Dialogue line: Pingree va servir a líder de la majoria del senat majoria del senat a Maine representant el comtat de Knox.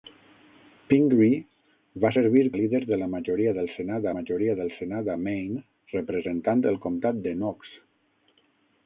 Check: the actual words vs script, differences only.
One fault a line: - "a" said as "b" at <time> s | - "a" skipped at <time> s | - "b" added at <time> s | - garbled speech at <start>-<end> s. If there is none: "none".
none